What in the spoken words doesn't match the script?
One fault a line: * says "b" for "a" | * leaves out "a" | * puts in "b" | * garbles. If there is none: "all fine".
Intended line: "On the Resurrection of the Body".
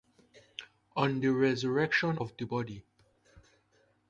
all fine